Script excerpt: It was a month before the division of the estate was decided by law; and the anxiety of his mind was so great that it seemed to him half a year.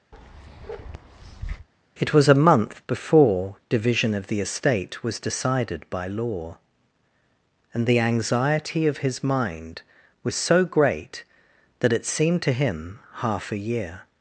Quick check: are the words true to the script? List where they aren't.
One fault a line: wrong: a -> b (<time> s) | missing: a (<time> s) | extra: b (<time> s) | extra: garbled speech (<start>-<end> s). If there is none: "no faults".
missing: the (3.5 s)